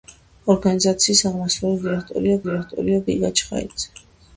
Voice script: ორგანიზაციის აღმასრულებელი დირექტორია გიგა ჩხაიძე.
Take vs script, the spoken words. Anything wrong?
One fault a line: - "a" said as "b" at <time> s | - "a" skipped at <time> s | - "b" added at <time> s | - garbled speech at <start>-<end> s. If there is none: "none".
- "დირექტორია" added at 2.5 s